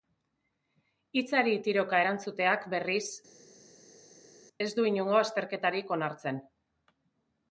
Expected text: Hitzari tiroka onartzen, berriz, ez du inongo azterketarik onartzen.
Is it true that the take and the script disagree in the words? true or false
true